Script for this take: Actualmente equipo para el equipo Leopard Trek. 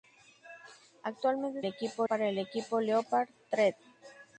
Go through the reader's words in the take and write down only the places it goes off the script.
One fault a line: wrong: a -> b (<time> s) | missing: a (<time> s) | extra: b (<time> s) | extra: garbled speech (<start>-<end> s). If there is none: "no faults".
no faults